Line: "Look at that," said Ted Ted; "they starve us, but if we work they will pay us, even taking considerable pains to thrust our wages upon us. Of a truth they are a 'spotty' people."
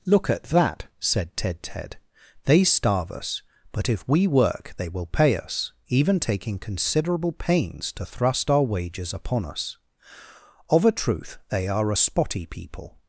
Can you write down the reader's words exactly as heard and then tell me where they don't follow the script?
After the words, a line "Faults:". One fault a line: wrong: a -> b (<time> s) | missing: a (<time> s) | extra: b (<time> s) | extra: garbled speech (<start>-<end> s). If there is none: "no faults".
"Look at that," said Ted Ted; "they starve us, but if we work they will pay us, even taking considerable pains to thrust our wages upon us. Of a truth they are a 'spotty' people."
Faults:
no faults